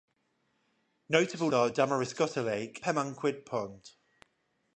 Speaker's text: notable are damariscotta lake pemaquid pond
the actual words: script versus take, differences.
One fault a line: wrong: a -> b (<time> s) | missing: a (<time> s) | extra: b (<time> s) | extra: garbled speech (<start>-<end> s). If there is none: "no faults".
no faults